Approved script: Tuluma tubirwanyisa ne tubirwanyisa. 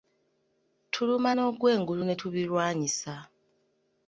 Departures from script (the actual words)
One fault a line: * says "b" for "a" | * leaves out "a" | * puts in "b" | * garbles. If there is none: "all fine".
* says "n'ogwengulu" for "tubirwanyisa"